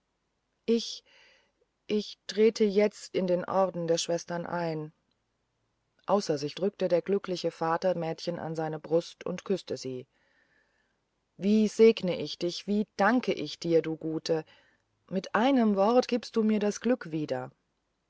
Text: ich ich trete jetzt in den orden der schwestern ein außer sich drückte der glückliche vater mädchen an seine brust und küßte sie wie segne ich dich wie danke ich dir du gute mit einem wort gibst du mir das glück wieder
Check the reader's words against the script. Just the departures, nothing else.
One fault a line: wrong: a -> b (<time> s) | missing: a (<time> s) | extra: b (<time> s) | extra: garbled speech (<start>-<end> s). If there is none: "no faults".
no faults